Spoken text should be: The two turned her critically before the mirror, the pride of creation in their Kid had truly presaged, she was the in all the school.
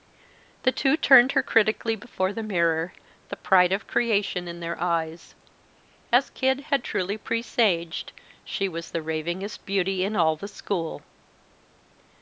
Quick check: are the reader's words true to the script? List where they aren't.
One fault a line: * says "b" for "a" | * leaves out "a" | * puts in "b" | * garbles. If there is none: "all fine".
* puts in "eyes As"
* puts in "ravingest beauty"